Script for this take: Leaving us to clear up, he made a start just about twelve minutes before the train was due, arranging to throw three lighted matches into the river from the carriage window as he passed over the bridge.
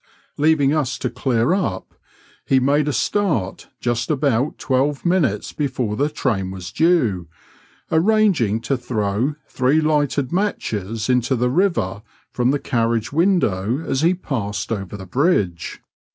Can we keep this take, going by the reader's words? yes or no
yes